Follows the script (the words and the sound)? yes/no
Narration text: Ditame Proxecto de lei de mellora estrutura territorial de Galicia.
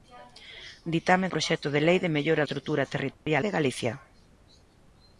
no